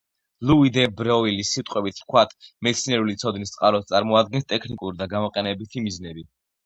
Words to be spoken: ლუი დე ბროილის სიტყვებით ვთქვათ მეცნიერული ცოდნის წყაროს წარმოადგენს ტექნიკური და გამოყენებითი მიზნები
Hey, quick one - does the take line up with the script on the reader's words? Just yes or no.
yes